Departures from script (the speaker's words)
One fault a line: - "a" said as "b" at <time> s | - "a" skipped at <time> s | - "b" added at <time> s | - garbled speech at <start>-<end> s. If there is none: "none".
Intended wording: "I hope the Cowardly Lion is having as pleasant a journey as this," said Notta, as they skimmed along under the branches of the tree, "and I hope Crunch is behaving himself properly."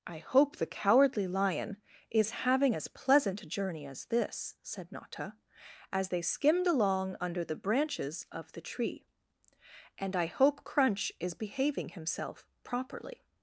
none